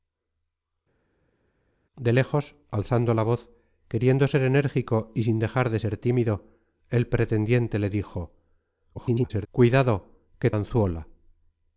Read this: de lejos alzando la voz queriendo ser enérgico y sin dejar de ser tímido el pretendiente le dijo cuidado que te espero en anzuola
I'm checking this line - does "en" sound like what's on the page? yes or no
no